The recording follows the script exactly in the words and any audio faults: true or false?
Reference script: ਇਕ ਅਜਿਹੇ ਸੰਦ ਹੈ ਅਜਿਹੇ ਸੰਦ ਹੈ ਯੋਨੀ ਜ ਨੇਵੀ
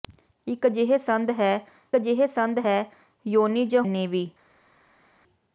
true